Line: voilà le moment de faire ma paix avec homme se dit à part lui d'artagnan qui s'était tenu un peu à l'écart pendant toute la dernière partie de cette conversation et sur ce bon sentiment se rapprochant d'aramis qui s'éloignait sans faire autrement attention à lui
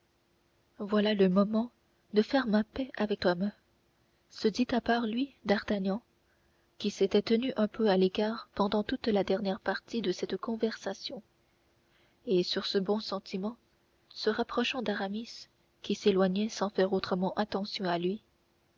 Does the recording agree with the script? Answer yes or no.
yes